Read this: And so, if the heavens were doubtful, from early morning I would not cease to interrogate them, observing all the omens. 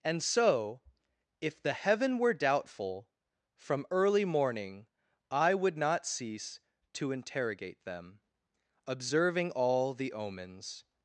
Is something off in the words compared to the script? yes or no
yes